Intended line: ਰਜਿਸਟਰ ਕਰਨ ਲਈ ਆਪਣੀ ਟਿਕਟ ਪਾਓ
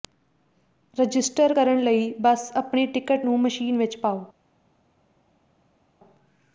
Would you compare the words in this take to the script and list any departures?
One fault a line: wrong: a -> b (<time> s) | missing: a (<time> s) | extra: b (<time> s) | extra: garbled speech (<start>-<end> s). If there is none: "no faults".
extra: ਬਸ (2.2 s)
extra: ਨੂੰ ਮਸ਼ੀਨ ਵਿੱਚ (3.2 s)